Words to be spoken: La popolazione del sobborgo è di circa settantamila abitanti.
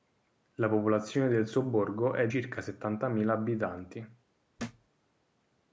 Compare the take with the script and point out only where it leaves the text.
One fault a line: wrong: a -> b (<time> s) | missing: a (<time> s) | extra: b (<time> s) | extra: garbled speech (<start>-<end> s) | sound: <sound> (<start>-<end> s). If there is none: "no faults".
missing: di (2.3 s)
sound: thud (4.6-4.9 s)